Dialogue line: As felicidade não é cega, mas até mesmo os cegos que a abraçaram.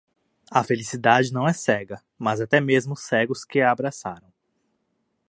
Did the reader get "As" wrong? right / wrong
wrong